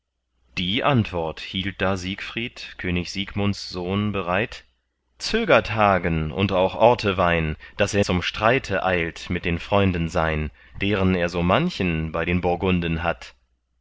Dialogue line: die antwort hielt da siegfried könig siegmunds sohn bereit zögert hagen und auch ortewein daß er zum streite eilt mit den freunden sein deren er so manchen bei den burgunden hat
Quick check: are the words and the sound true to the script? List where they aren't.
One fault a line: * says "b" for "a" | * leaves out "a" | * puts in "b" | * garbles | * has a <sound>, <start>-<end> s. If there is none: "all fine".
all fine